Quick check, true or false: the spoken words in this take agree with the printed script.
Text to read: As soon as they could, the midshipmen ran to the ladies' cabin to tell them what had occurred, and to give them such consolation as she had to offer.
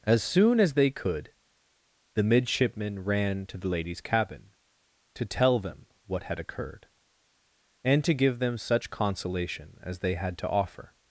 false